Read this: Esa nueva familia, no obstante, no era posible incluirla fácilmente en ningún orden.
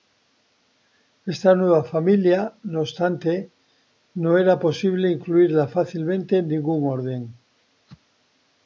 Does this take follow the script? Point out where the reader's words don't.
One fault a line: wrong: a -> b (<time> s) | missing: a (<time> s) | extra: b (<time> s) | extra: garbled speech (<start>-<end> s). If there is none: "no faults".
wrong: Esa -> Esta (1.3 s)